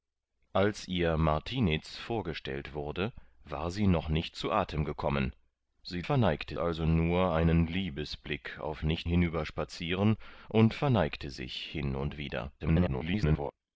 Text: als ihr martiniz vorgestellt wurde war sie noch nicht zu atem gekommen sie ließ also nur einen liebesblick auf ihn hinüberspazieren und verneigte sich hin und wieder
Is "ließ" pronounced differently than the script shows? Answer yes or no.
yes